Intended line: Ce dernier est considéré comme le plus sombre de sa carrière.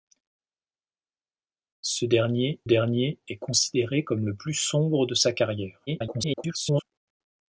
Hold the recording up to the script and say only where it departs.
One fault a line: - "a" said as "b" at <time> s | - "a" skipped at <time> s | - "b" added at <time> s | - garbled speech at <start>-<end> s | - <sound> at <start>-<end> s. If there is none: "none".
- "dernier" added at 2.6 s
- garbled speech at 5.9-6.8 s